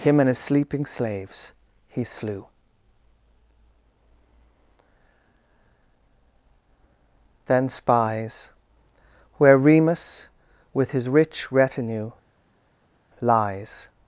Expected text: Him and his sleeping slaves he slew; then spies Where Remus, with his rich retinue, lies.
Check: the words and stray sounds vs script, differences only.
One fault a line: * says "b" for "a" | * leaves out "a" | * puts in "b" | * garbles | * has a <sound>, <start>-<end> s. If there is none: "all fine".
all fine